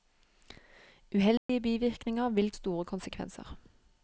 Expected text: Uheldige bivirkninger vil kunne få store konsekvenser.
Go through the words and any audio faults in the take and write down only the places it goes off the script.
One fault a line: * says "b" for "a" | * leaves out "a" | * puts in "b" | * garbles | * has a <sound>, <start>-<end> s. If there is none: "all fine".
* has a dropout, 1.4-1.5 s
* leaves out "kunne få"